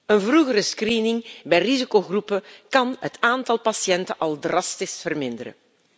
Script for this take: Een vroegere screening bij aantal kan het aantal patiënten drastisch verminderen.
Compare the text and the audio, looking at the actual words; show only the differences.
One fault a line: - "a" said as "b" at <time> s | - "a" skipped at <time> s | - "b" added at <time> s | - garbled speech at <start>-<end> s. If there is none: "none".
- "aantal" said as "risicogroepen" at 1.6 s
- "al" added at 4.2 s